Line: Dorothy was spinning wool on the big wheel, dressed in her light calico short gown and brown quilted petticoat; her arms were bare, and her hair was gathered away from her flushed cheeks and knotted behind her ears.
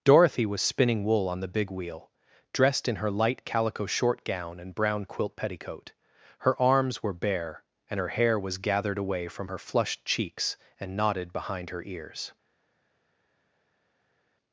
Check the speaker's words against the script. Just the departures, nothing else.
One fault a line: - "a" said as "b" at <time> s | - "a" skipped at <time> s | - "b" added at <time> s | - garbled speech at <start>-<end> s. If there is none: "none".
- "quilted" said as "quilt" at 5.0 s